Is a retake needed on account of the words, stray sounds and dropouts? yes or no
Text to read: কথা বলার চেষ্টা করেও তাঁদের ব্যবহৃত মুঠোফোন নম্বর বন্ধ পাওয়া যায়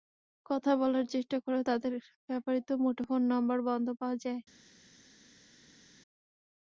no